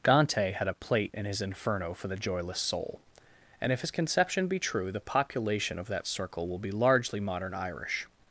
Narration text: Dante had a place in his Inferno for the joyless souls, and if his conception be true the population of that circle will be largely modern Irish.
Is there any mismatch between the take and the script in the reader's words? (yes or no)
yes